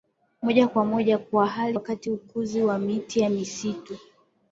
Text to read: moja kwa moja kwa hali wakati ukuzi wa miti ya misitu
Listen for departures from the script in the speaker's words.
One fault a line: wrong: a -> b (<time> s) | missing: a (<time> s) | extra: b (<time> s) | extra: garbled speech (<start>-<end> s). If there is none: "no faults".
no faults